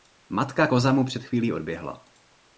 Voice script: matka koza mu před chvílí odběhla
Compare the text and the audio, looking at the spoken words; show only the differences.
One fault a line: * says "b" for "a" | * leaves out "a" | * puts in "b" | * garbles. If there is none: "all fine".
all fine